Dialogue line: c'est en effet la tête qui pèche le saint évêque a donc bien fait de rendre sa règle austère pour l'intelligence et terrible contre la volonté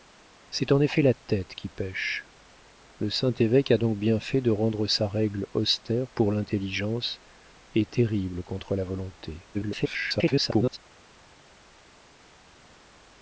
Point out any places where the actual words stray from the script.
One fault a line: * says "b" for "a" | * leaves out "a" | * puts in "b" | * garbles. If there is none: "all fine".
* garbles